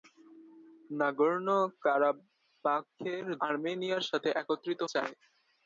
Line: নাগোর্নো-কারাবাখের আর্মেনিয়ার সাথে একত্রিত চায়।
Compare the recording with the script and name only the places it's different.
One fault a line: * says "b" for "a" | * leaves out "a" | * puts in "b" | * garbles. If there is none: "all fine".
all fine